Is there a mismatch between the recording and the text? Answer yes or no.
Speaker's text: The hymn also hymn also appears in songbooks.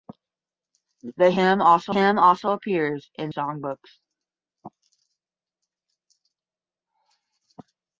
no